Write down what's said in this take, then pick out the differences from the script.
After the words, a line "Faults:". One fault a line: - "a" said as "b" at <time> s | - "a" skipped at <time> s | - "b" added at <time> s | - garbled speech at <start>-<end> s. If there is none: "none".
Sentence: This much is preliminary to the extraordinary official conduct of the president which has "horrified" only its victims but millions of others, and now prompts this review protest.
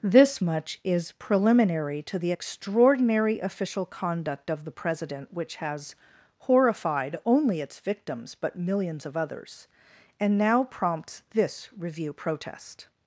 This much is preliminary to the extraordinary official conduct of the president which has "horrified" only its victims but millions of others, and now prompts this review protest.
Faults:
none